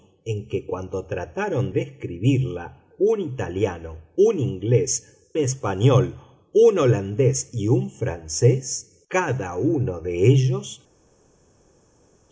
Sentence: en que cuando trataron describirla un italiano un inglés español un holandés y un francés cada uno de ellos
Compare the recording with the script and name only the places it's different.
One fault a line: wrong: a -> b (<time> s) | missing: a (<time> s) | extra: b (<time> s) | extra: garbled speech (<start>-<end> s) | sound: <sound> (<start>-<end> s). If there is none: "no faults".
no faults